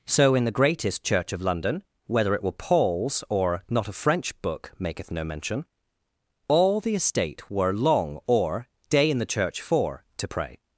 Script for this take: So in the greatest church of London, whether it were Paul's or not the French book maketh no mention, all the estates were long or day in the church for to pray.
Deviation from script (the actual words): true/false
true